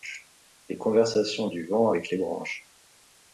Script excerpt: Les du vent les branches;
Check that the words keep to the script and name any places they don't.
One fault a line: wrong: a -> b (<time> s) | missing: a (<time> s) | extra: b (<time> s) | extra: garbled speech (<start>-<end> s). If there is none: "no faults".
extra: conversations (0.8 s)
extra: avec (1.9 s)